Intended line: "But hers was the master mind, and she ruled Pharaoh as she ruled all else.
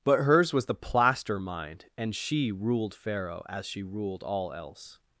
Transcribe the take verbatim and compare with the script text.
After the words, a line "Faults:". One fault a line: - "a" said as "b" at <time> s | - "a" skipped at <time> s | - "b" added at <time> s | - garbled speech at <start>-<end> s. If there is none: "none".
"But hers was the plaster mind, and she ruled Pharaoh as she ruled all else.
Faults:
- "master" said as "plaster" at 0.7 s